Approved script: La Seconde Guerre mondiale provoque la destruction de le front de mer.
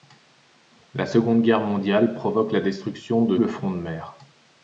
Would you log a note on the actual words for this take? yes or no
no